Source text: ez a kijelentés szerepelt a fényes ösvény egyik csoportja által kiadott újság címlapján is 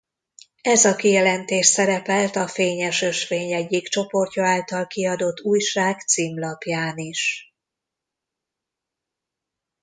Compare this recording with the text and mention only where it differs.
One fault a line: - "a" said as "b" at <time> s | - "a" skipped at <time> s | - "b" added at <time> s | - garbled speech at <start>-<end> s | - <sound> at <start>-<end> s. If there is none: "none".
none